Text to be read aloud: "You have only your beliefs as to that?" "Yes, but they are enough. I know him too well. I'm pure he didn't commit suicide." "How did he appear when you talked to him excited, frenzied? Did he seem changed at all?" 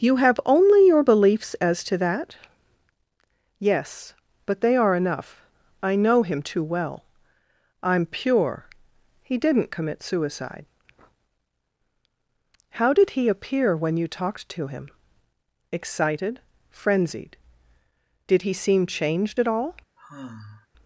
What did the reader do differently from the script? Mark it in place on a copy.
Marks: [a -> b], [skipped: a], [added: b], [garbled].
"You have only your beliefs as to that?" "Yes, but they are enough. I know him too well. I'm pure he didn't commit suicide." "How did he appear when you talked to him excited, frenzied? Did he seem changed at all?"